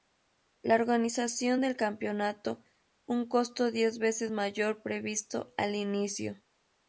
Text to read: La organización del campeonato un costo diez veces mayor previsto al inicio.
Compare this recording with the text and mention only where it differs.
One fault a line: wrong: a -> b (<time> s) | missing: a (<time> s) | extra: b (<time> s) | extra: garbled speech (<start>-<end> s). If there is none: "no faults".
no faults